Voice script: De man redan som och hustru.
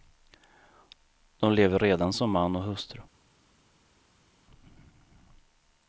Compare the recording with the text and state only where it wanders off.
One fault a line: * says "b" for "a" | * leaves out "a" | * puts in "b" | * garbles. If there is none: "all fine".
* says "lever" for "man"
* puts in "man"